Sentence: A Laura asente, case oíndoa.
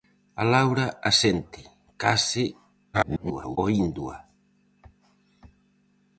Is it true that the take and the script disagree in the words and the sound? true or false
true